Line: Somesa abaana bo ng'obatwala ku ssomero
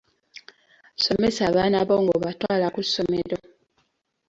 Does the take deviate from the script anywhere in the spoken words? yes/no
no